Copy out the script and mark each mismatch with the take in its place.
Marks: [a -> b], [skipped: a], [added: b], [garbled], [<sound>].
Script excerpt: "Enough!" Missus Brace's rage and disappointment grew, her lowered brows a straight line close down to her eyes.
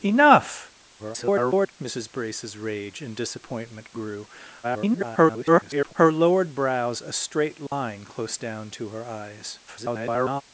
"Enough!" [garbled] Missus Brace's rage and disappointment grew, [garbled] her lowered brows a straight line [dropout] close down to her eyes. [garbled]